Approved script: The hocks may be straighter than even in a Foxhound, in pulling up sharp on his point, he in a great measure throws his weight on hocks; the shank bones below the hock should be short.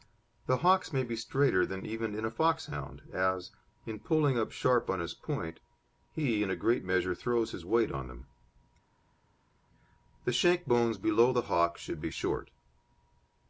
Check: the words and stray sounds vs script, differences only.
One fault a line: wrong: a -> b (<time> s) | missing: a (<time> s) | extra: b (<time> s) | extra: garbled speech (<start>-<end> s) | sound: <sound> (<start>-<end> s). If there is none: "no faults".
extra: as (3.1 s)
wrong: hocks -> them (8.1 s)